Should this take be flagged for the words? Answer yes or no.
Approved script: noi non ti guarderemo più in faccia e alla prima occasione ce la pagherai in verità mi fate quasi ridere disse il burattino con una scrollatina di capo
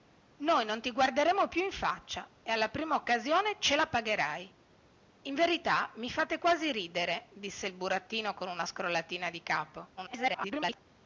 yes